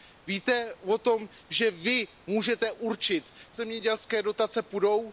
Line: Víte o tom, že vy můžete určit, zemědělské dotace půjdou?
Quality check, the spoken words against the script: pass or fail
pass